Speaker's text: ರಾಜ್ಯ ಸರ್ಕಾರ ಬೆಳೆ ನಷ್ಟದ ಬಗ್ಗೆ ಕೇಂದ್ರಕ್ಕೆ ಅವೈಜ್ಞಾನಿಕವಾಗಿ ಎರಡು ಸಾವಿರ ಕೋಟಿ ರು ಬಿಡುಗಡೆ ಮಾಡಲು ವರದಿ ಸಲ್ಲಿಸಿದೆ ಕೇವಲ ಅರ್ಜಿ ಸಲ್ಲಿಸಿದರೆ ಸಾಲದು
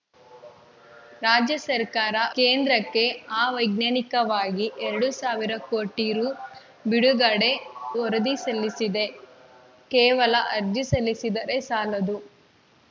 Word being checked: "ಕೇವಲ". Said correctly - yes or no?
yes